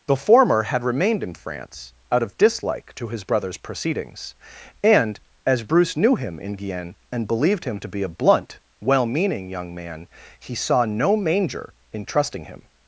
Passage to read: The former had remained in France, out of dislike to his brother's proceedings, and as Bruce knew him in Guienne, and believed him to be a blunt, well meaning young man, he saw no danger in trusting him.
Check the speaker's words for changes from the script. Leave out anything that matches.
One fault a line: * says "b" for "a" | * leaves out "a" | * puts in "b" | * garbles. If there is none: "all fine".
* says "manger" for "danger"